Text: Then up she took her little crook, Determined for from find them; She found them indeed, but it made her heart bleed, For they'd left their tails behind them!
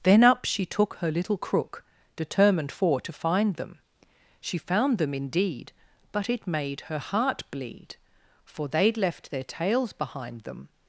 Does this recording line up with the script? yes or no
no